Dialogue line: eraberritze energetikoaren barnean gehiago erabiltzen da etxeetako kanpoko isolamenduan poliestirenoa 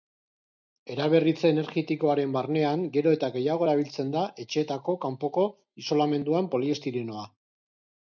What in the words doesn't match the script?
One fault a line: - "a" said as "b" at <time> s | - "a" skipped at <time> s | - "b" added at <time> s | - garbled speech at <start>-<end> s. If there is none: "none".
- "gero eta" added at 3.0 s